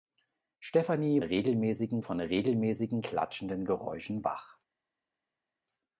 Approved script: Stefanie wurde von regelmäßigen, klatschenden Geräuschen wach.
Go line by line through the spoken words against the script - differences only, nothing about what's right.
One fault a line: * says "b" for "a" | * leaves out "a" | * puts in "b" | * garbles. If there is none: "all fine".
* says "regelmäßigen" for "wurde"